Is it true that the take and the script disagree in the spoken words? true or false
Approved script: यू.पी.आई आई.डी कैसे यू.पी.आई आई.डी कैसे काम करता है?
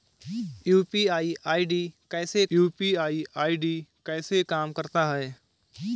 false